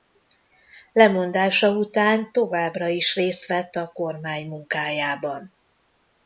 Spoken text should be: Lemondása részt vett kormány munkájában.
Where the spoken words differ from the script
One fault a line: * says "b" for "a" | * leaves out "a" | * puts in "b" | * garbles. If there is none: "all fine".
* puts in "után továbbra is"
* puts in "a"